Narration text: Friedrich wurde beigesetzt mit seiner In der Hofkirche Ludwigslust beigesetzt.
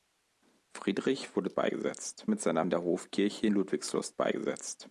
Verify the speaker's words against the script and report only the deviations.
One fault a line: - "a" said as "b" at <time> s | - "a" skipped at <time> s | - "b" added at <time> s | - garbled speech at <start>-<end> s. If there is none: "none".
none